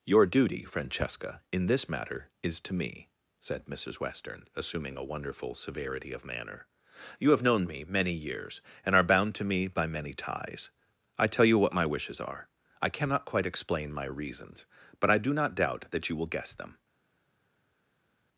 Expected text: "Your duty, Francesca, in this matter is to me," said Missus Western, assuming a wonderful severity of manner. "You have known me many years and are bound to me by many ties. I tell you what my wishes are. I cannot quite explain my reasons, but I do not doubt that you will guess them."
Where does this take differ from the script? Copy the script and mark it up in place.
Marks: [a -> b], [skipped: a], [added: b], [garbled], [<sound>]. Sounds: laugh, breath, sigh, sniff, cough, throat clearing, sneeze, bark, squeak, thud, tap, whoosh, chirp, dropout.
"Your duty, Francesca, in this matter is to me," said Missus Western, assuming a wonderful severity of manner. "You have known me many years and are bound to me by many ties. I tell you what my wishes are. I cannot quite explain my reasons, but I do not doubt that you will guess them."